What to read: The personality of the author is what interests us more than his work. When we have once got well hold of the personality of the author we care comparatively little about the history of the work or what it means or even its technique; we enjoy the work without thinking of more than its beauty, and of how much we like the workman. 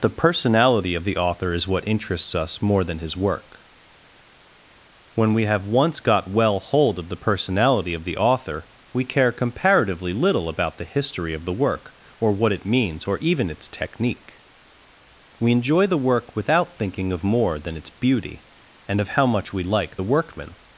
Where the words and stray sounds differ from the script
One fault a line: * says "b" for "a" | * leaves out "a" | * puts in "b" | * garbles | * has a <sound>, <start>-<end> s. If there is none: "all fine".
all fine